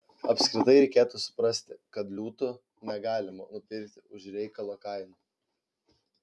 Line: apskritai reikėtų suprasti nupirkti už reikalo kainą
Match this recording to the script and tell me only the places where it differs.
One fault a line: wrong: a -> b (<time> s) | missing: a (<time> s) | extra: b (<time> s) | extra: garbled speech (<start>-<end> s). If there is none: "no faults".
extra: kad liūtų negalima (2.0 s)